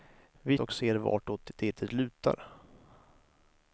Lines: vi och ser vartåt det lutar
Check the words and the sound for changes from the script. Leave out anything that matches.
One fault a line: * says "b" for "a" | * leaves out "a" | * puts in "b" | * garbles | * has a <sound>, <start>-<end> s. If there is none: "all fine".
all fine